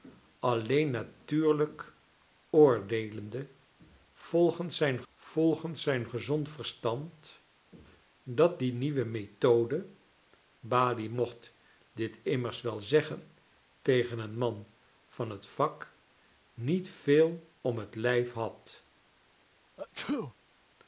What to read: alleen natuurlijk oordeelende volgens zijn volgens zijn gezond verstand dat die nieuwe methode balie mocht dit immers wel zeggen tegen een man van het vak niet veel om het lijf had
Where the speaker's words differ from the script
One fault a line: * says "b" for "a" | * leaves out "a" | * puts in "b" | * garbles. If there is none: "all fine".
all fine